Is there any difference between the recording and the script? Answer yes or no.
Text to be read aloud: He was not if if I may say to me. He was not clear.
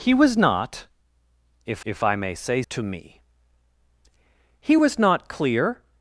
no